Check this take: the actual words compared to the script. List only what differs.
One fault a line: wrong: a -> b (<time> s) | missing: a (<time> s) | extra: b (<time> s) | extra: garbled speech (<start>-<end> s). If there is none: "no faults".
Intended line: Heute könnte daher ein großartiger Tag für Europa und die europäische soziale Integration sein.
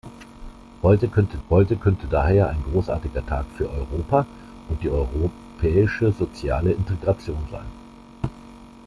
extra: heute könnte (1.5 s)